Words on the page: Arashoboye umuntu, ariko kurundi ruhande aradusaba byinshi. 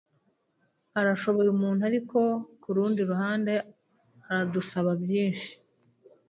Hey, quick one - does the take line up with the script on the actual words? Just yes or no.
yes